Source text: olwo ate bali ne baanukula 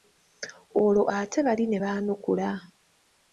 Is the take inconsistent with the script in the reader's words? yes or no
no